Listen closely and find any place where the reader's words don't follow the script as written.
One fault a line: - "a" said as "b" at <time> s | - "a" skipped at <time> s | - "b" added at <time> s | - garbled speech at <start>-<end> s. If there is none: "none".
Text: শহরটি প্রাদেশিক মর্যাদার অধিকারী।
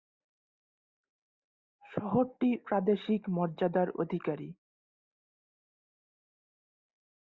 none